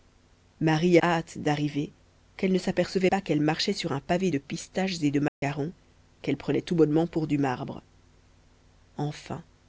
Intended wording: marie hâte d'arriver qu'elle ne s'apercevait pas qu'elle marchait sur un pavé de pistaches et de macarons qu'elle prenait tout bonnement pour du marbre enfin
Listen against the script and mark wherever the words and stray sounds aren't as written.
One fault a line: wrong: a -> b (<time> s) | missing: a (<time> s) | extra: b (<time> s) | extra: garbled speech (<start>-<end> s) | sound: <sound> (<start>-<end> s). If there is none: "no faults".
sound: dropout (5.3-5.4 s)